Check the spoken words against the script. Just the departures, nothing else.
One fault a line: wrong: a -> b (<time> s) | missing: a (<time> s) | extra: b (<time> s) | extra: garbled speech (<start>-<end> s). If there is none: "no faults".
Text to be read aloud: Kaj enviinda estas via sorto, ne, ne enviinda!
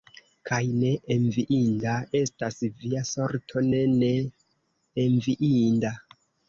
extra: ne (0.8 s)